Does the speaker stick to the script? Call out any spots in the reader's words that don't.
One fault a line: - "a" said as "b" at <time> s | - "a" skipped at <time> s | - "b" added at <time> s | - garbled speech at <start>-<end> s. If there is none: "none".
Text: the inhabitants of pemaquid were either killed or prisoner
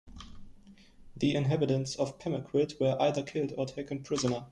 - "taken" added at 3.6 s